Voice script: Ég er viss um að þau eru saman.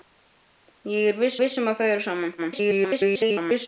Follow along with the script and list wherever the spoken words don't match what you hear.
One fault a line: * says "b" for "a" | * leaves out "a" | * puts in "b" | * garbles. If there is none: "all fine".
* puts in "viss"
* garbles